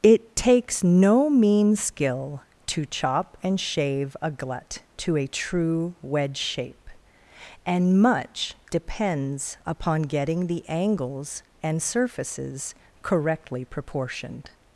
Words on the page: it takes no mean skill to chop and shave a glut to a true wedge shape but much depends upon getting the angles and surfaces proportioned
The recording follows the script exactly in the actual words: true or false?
false